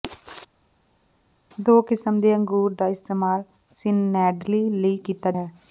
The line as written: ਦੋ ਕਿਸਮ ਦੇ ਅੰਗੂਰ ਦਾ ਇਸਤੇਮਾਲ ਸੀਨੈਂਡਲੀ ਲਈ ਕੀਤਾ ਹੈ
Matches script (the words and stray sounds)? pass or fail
pass